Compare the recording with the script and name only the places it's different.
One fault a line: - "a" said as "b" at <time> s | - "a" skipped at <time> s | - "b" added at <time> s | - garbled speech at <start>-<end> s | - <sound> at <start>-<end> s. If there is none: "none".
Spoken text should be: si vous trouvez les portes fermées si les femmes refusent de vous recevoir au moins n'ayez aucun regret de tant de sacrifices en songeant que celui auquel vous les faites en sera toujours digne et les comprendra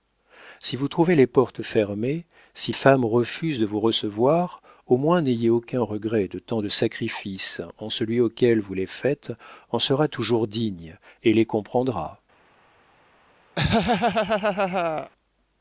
- "les" skipped at 2.7 s
- "songeant que" skipped at 7.9 s
- laugh at 13.6-15.1 s